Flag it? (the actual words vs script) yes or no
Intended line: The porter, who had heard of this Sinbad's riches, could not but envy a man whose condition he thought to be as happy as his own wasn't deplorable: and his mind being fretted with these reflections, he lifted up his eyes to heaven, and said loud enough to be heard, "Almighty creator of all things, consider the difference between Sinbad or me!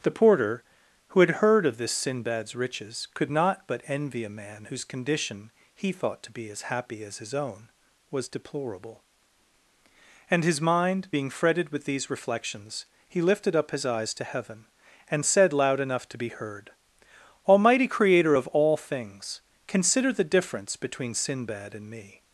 yes